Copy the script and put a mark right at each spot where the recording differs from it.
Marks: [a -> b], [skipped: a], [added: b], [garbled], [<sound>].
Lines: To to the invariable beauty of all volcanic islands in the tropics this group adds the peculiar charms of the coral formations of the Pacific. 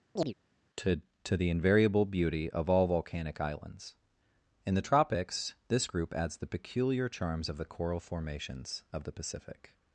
[chirp] To to the invariable beauty of all volcanic islands in the tropics this group adds the peculiar charms of the coral formations of the Pacific.